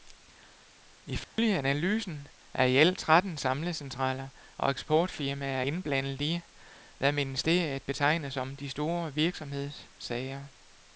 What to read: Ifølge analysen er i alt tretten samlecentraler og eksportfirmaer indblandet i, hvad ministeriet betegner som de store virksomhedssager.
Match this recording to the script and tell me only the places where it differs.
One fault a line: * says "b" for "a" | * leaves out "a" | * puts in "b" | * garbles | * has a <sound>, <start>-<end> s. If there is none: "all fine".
* has a dropout, 1.2-1.4 s